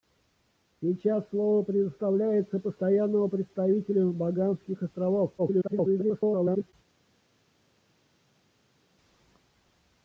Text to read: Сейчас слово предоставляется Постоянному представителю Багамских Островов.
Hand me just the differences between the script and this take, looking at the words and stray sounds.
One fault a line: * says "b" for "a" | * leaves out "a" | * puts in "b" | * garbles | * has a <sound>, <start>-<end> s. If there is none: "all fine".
* garbles